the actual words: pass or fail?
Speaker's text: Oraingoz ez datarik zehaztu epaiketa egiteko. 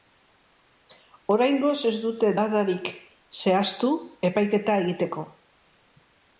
fail